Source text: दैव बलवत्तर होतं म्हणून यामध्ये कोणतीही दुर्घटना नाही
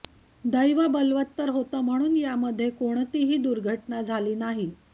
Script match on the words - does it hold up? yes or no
no